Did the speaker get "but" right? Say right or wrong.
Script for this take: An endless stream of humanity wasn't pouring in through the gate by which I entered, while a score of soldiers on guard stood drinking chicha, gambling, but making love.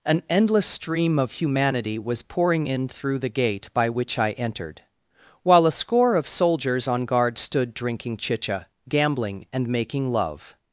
wrong